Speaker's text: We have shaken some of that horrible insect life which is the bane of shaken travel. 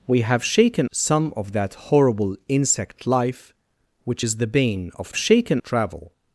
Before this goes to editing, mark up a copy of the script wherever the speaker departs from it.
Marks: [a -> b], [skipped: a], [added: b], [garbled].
We have shaken some of that horrible insect life which is the bane of shaken travel.